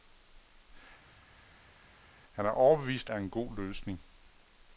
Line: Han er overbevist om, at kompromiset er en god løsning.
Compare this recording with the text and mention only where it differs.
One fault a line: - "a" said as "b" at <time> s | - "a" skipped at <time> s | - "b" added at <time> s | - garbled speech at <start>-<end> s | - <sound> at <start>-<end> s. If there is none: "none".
- "om at kompromiset" skipped at 3.1 s